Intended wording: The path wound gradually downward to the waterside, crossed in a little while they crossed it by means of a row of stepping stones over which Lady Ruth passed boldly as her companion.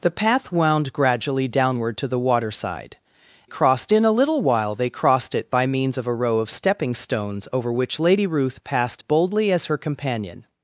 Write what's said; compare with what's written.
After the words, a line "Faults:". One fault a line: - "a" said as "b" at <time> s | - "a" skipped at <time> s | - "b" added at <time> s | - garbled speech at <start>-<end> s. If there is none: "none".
The path wound gradually downward to the waterside, crossed in a little while they crossed it by means of a row of stepping stones over which Lady Ruth passed boldly as her companion.
Faults:
none